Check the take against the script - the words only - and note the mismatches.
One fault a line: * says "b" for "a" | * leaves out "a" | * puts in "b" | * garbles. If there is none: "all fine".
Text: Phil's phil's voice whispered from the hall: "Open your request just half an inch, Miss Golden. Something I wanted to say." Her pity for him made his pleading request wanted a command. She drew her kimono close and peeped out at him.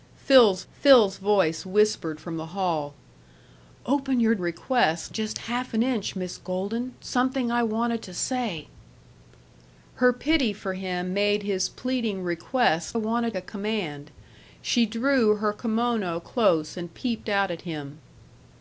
all fine